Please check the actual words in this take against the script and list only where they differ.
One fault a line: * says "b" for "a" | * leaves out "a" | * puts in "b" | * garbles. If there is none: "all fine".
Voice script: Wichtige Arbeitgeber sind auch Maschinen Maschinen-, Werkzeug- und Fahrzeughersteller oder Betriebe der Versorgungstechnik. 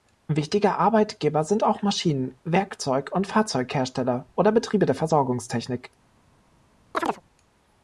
* leaves out "Maschinen"